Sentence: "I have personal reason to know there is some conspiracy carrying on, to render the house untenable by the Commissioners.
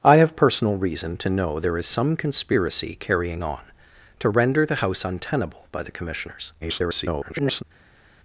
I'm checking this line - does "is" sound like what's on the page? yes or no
yes